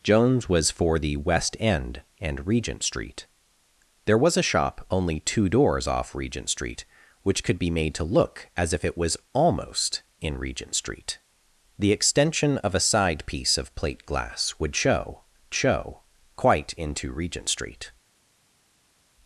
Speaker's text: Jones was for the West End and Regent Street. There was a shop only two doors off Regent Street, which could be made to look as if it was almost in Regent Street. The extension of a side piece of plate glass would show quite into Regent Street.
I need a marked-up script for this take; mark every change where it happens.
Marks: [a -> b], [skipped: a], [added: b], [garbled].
Jones was for the West End and Regent Street. There was a shop only two doors off Regent Street, which could be made to look as if it was almost in Regent Street. The extension of a side piece of plate glass would show [added: show] quite into Regent Street.